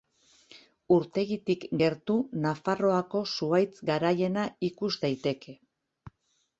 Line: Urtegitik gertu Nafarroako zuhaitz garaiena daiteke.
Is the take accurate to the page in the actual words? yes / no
no